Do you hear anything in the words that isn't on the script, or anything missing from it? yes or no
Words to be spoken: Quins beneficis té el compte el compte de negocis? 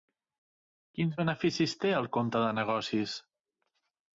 yes